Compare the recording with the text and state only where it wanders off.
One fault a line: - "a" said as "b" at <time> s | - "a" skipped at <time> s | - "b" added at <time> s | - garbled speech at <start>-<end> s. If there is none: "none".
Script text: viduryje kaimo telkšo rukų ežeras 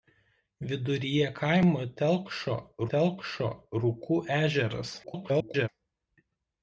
- "telkšo" added at 2.9 s
- garbled speech at 5.0-5.7 s